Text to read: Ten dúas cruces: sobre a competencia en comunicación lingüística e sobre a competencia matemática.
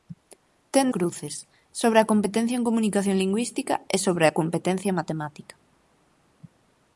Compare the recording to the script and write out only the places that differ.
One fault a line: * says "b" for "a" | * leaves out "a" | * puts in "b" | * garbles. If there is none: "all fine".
* leaves out "dúas"